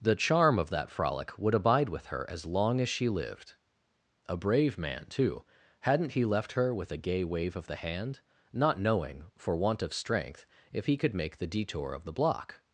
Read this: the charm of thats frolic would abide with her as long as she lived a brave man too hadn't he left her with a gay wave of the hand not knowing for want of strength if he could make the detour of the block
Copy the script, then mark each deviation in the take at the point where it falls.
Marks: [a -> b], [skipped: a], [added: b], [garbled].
the charm of [thats -> that] frolic would abide with her as long as she lived a brave man too hadn't he left her with a gay wave of the hand not knowing for want of strength if he could make the detour of the block